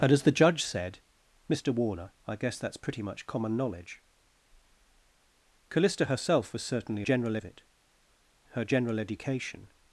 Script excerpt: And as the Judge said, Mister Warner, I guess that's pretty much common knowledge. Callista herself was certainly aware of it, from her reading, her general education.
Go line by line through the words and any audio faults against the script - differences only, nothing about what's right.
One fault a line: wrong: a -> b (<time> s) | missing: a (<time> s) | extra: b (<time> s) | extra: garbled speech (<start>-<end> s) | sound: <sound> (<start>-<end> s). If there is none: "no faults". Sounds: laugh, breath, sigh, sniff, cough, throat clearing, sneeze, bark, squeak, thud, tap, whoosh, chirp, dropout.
wrong: aware -> general (7.0 s)
missing: from her reading (7.6 s)